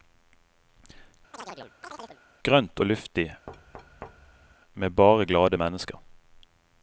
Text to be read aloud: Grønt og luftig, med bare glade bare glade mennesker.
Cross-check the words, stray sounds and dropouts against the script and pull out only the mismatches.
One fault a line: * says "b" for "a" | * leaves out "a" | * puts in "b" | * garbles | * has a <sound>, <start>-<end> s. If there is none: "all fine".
* has a chirp, 1.3-2.2 s
* has a thud, 3.5-4.6 s
* leaves out "bare glade"